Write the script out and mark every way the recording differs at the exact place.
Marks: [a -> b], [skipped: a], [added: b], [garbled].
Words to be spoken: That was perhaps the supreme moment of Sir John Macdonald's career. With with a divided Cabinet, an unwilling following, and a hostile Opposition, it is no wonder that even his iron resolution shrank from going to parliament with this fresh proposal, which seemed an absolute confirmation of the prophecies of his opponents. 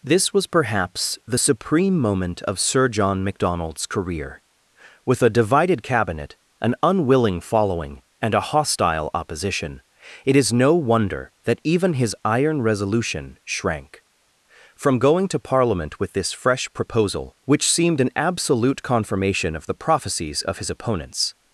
[That -> This] was perhaps the supreme moment of Sir John Macdonald's career. With [skipped: with] a divided Cabinet, an unwilling following, and a hostile Opposition, it is no wonder that even his iron resolution shrank from going to parliament with this fresh proposal, which seemed an absolute confirmation of the prophecies of his opponents.